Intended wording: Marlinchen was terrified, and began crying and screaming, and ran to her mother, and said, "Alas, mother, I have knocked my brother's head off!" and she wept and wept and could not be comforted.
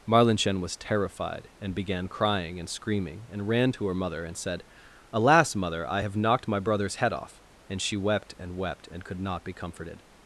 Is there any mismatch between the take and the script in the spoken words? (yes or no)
no